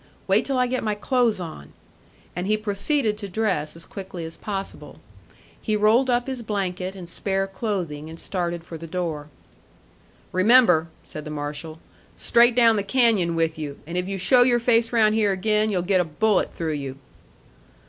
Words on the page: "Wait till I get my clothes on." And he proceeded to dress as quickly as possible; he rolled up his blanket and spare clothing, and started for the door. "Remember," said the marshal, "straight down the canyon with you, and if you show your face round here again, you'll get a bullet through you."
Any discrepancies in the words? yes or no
no